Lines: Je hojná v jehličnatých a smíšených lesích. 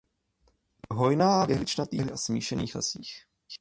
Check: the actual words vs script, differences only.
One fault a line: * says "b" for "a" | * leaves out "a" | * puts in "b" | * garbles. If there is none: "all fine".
all fine